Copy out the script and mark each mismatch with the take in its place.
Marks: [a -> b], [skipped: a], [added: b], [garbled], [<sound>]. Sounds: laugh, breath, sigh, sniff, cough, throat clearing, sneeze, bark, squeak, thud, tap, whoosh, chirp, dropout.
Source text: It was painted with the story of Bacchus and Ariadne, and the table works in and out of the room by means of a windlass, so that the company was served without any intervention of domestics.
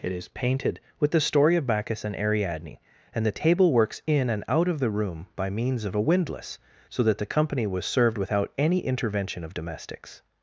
It [was -> is] painted with the story of Bacchus and Ariadne, and the table works in and out of the room by means of a windlass, so that the company was served without any intervention of domestics.